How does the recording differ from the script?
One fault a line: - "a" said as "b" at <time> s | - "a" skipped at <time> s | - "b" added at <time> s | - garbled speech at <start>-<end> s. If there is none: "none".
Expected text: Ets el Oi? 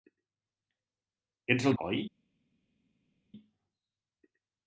none